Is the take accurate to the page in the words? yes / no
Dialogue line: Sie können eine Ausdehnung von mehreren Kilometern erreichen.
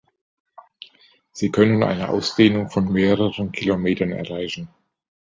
yes